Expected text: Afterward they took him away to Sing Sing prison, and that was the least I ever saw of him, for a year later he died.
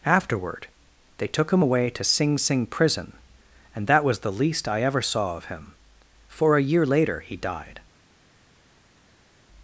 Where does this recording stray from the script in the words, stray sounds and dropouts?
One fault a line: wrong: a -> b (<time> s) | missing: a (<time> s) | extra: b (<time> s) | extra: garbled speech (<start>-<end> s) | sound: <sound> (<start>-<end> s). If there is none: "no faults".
no faults